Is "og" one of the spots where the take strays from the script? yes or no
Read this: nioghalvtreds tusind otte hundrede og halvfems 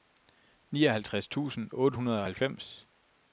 no